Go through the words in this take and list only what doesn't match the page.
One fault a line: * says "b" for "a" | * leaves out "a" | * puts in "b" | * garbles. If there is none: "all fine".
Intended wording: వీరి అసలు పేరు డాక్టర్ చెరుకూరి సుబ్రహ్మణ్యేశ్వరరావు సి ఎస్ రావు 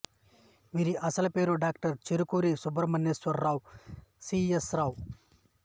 all fine